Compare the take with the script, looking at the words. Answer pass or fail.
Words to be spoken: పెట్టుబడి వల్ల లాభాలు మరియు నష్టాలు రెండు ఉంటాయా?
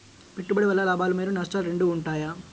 pass